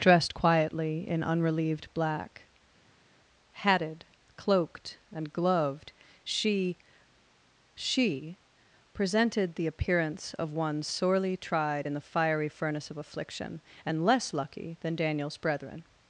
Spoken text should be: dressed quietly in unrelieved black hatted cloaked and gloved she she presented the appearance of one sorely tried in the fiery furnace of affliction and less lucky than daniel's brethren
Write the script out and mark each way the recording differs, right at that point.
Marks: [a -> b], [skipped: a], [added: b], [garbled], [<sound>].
dressed quietly in unrelieved black hatted cloaked and gloved she she presented the appearance of one sorely tried in the fiery furnace of affliction and less lucky than daniel's brethren